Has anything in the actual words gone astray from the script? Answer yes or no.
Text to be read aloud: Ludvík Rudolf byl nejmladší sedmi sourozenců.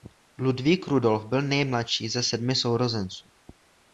yes